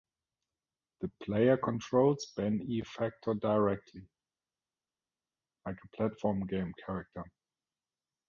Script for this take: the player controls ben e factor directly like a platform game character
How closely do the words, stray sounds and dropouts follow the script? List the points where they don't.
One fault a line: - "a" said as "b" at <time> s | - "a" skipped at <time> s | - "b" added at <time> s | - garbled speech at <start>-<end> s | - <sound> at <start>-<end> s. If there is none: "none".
none